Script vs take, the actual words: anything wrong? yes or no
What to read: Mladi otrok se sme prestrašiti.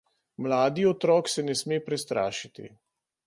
yes